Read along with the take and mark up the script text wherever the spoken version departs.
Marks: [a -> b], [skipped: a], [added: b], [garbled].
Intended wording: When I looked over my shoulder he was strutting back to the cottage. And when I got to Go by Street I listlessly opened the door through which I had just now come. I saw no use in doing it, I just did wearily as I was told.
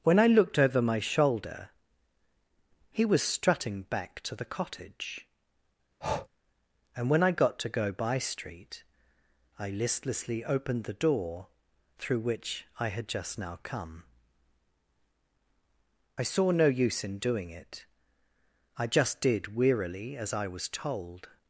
When I looked over my shoulder he was strutting back to the cottage. And when I got to Go by Street I listlessly opened the door through which I had just now come. I saw no use in doing it, I just did wearily as I was told.